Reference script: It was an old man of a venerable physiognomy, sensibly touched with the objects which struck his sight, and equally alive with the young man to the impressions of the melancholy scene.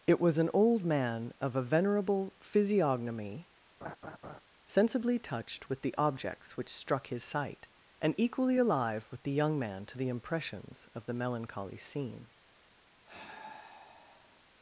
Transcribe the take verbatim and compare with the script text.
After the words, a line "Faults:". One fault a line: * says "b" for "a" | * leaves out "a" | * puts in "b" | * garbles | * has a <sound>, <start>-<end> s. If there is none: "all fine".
It was an old man of a venerable physiognomy, sensibly touched with the objects which struck his sight, and equally alive with the young man to the impressions of the melancholy scene.
Faults:
* has a laugh, 3.8-4.4 s
* has a sigh, 13.1-14.4 s